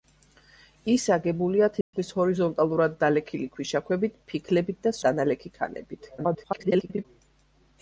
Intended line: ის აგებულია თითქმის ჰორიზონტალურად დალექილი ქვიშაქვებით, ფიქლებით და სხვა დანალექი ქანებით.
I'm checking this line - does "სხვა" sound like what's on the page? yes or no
no